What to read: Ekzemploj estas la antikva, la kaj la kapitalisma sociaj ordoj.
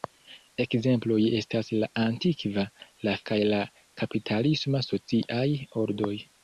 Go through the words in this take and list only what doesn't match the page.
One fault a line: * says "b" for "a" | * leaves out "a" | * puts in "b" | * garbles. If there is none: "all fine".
all fine